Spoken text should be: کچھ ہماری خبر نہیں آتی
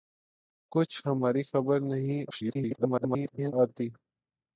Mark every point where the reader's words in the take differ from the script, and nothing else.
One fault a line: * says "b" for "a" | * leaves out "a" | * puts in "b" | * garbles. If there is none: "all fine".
* garbles